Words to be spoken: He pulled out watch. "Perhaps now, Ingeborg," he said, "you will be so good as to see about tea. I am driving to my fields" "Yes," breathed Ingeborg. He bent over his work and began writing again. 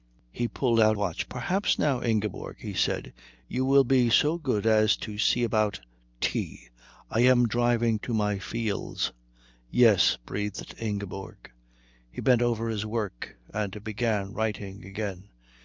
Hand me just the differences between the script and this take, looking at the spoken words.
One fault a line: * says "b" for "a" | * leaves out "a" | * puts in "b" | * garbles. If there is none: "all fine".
all fine